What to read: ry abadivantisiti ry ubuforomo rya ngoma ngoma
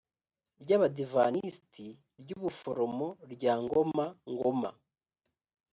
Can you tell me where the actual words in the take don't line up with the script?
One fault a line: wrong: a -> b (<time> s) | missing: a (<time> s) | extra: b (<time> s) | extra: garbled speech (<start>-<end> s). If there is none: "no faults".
no faults